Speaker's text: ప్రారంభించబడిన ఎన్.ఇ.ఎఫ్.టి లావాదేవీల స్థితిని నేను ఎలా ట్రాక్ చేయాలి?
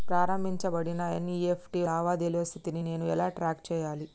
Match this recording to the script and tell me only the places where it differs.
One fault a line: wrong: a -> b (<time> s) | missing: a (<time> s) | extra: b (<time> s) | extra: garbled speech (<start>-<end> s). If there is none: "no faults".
no faults